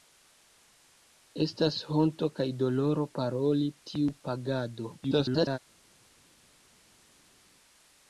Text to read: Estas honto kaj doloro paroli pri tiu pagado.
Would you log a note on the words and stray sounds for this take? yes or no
yes